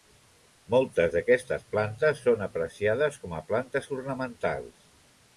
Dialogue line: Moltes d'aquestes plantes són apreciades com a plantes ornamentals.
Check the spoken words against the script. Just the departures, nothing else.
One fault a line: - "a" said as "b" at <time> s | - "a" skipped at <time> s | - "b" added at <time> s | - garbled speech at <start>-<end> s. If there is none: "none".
none